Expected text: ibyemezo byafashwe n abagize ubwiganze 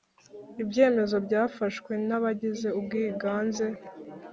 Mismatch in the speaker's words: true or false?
false